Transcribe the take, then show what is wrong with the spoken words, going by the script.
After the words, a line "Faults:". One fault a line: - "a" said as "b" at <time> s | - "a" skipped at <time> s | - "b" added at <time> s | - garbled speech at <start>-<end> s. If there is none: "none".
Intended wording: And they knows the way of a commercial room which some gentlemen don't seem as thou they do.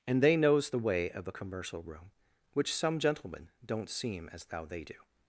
And they knows the way of a commercial room which some gentlemen don't seem as thou they do.
Faults:
none